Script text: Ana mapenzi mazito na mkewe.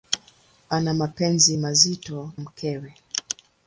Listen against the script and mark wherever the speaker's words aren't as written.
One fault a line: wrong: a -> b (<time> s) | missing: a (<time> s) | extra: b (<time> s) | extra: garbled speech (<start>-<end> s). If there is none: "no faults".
missing: na (2.3 s)